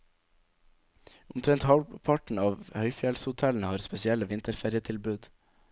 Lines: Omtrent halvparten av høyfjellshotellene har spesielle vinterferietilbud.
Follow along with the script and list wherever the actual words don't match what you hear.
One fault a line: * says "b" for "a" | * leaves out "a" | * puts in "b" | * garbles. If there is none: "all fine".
all fine